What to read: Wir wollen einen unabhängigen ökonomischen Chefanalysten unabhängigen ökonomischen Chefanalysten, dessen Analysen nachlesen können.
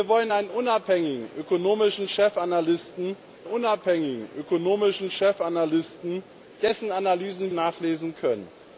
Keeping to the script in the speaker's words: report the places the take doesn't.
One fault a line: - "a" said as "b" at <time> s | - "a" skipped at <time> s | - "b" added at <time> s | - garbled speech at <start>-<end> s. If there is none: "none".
none